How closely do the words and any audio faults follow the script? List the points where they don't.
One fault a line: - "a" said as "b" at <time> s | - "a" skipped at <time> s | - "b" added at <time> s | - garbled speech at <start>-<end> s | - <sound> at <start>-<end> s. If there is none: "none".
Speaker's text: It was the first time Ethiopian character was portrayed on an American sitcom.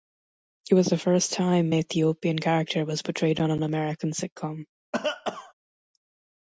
- cough at 4.9-5.5 s